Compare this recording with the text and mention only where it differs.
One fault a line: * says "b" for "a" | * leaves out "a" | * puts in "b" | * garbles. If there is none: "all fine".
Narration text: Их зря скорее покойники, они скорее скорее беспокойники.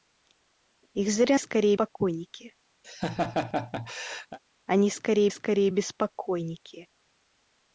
all fine